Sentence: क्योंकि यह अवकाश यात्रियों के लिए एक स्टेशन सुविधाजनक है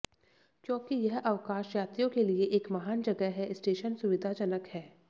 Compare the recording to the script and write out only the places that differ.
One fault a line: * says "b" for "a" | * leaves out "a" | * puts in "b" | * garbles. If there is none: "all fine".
* puts in "महान जगह है"